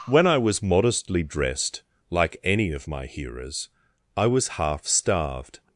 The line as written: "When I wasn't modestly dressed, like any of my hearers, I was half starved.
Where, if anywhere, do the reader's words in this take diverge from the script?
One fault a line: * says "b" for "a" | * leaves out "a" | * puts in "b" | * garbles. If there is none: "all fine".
* says "was" for "wasn't"